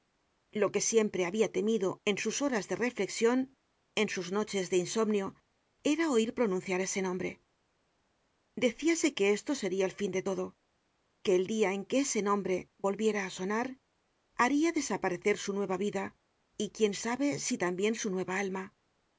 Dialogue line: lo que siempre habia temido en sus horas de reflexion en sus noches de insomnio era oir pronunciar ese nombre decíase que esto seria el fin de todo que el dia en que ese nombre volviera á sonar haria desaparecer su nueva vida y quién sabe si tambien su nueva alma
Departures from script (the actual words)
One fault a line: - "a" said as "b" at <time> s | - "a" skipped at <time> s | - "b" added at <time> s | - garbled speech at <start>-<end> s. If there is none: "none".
none